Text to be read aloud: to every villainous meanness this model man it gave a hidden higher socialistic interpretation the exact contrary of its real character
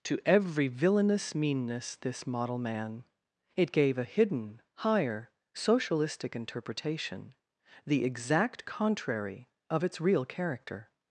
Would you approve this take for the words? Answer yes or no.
yes